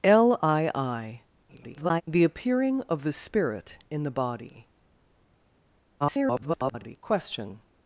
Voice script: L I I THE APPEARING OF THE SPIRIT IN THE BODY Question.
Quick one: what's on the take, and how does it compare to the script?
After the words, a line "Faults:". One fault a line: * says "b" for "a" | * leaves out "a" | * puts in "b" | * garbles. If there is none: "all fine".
L I I [garbled] THE APPEARING OF THE SPIRIT IN THE BODY [garbled] Question.
Faults:
* garbles
* garbles